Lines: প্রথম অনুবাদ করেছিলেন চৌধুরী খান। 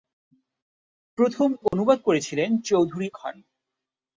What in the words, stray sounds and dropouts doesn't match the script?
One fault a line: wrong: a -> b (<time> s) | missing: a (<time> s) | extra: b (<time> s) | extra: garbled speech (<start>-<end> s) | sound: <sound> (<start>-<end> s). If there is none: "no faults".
sound: dropout (1.7-1.7 s)